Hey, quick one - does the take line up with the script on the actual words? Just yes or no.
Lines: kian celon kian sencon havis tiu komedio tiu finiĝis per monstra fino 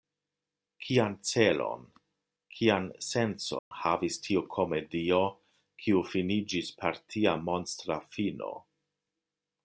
no